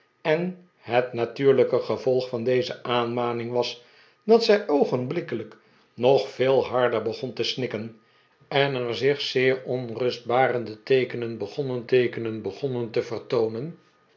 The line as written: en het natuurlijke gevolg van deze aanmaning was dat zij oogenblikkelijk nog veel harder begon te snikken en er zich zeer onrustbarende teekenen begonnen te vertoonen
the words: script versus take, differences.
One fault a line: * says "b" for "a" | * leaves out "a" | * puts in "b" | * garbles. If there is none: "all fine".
* puts in "teekenen begonnen"